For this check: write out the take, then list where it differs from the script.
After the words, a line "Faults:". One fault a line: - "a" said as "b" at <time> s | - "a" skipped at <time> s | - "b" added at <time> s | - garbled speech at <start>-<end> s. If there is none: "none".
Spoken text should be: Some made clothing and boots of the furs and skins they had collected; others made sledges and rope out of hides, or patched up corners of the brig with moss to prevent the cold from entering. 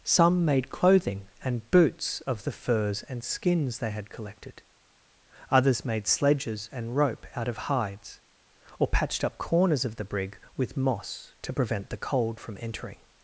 Some made clothing and boots of the furs and skins they had collected; others made sledges and rope out of hides, or patched up corners of the brig with moss to prevent the cold from entering.
Faults:
none